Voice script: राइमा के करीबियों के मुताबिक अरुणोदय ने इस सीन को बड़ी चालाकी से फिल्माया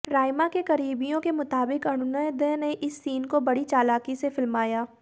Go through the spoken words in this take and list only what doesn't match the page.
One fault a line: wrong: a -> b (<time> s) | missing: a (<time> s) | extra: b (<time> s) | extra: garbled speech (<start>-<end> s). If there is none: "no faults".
no faults